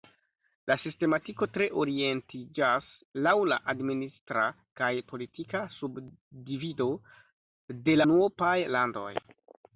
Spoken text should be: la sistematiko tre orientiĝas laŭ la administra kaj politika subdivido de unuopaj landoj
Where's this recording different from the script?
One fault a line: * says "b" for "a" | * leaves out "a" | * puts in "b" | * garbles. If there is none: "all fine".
all fine